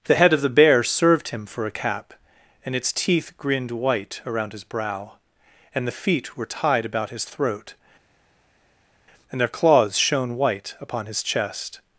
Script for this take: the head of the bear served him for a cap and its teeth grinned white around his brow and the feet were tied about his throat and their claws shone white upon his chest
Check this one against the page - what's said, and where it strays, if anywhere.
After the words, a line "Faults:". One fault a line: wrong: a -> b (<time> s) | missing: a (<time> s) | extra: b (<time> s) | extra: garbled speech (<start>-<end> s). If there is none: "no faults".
the head of the bear served him for a cap and its teeth grinned white around his brow and the feet were tied about his throat and their claws shone white upon his chest
Faults:
no faults